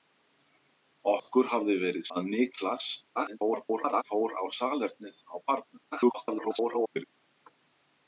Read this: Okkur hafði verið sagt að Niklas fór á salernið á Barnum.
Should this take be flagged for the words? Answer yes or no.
yes